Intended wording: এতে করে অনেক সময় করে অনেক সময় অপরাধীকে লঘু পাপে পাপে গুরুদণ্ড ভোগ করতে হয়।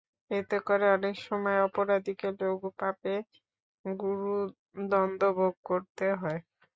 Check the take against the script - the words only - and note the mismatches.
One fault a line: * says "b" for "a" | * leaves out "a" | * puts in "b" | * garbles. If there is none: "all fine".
* leaves out "করে অনেক সময়"
* leaves out "পাপে"